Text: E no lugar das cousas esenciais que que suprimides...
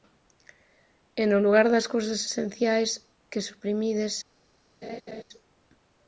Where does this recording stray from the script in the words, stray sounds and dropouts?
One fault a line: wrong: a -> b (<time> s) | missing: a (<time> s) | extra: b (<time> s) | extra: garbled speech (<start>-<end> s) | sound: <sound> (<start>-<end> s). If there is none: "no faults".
missing: que (3.5 s)
sound: laugh (4.8-5.2 s)